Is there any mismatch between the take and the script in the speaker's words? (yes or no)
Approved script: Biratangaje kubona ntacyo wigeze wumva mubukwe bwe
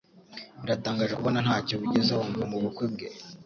no